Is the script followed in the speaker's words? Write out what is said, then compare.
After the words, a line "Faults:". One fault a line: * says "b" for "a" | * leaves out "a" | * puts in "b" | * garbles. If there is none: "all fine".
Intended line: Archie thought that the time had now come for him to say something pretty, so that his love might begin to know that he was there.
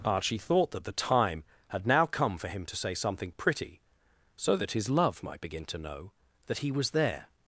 Archie thought that the time had now come for him to say something pretty, so that his love might begin to know that he was there.
Faults:
all fine